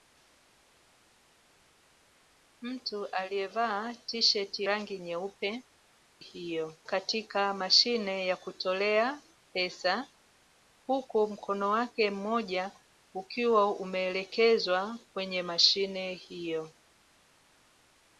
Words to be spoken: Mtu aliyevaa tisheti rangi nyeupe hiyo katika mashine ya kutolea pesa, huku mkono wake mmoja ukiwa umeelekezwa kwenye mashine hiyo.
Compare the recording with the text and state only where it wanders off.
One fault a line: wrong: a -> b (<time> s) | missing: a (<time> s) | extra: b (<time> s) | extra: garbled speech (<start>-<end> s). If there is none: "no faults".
no faults